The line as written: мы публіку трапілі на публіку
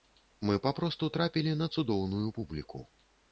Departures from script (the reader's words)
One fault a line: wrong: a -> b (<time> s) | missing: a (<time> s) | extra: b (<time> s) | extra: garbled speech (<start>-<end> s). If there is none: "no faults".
wrong: публіку -> папросту (0.6 s)
extra: цудоўную (1.8 s)